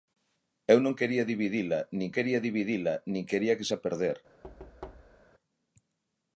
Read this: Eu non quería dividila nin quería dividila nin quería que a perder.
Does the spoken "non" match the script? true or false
true